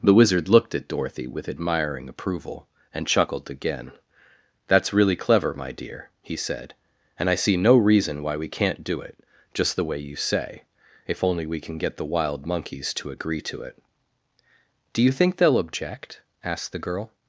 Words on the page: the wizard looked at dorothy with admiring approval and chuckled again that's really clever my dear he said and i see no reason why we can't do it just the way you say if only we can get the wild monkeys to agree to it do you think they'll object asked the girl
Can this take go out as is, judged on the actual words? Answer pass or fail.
pass